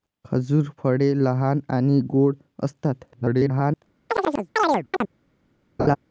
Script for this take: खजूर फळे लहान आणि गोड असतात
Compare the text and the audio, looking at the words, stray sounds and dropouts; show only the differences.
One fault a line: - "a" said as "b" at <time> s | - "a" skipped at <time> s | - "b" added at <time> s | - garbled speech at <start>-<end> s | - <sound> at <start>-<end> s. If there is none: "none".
- garbled speech at 3.1-3.8 s
- chirp at 4.1-5.1 s
- laugh at 5.8-6.0 s